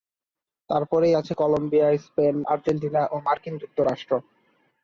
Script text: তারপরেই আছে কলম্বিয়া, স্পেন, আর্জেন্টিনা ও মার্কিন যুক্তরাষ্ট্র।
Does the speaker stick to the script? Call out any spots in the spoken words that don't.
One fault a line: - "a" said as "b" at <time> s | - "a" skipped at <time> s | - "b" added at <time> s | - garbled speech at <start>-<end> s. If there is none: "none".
none